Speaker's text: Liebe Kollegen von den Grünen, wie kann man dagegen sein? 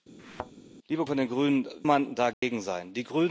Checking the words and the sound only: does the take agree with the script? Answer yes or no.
no